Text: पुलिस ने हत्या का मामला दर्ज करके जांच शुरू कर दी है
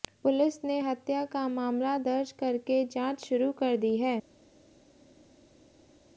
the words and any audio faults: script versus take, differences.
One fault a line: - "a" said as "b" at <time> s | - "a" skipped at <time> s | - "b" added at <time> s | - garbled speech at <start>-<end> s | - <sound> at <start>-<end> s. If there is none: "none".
none